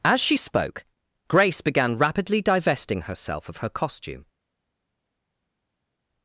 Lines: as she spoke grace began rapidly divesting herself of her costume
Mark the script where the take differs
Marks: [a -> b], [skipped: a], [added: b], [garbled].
as she spoke grace began rapidly divesting herself of her costume